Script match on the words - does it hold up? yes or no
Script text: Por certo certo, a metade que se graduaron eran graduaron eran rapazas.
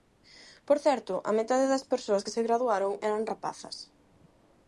no